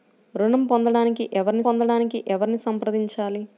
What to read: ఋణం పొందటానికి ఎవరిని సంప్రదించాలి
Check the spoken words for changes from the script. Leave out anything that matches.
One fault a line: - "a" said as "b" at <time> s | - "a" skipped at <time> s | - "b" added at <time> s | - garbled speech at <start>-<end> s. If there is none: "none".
- "పొందటానికి ఎవరిని" added at 1.6 s